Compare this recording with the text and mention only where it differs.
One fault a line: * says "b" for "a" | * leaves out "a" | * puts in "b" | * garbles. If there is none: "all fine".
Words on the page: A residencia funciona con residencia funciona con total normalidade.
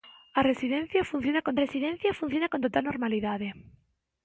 all fine